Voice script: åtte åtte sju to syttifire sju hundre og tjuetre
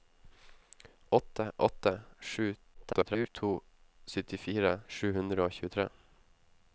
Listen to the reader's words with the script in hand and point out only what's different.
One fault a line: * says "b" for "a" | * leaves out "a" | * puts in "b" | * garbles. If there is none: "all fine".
* garbles